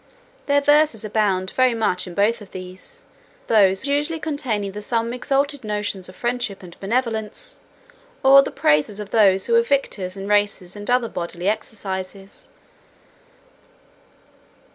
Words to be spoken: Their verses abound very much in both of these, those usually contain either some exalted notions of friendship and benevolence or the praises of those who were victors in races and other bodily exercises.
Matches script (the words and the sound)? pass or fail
pass